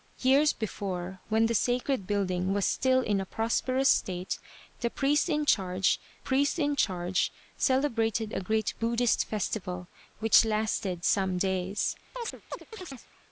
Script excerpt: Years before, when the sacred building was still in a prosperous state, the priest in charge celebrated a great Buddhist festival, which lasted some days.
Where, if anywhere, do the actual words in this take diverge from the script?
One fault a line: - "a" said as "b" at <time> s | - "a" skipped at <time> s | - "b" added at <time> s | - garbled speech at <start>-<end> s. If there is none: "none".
- "priest in charge" added at 6.2 s